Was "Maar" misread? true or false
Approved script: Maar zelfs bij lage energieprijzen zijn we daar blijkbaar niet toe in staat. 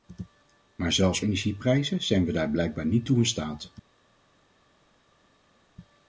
false